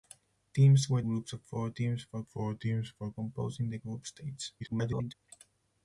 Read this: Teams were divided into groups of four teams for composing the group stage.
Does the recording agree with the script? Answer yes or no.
no